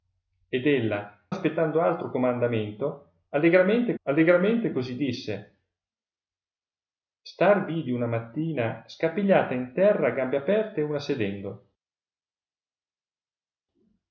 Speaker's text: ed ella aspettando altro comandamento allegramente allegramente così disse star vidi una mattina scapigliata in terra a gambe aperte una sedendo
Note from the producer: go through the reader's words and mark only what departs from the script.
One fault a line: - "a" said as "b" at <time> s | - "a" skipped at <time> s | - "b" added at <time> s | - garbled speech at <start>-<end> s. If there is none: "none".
none